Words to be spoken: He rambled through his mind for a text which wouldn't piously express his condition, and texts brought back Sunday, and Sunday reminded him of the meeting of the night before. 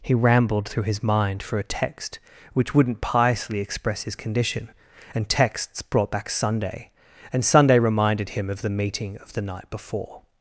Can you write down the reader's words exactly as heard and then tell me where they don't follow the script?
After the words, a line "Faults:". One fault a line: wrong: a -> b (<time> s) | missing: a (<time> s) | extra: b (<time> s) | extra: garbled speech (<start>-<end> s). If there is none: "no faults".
He rambled through his mind for a text which wouldn't piously express his condition, and texts brought back Sunday, and Sunday reminded him of the meeting of the night before.
Faults:
no faults